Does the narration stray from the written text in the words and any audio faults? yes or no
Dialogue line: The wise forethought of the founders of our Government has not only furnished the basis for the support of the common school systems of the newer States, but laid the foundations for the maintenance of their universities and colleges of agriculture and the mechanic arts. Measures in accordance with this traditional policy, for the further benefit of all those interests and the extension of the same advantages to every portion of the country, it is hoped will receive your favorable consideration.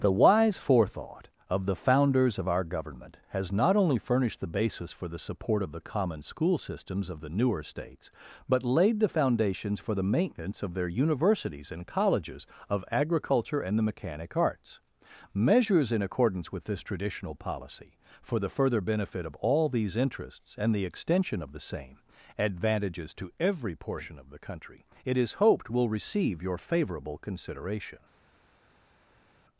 yes